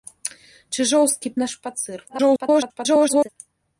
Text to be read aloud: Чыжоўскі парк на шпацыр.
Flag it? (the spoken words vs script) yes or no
yes